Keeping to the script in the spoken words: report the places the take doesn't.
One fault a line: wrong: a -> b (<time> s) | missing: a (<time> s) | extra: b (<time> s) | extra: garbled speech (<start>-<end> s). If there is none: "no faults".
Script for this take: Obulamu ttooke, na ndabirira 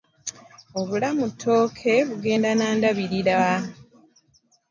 extra: bugenda (2.1 s)